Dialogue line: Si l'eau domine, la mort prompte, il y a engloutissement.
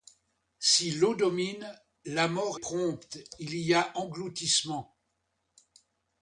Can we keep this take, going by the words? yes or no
yes